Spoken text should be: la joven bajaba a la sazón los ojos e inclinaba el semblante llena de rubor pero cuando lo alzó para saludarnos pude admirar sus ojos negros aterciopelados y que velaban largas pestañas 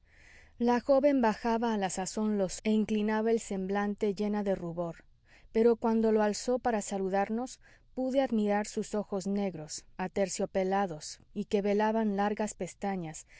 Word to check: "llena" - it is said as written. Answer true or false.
true